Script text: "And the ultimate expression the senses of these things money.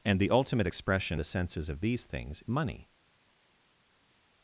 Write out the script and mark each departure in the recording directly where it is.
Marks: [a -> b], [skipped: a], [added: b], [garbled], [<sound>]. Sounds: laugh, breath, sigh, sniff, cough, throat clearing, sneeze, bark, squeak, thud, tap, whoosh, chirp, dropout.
"And the ultimate expression the senses of these things money.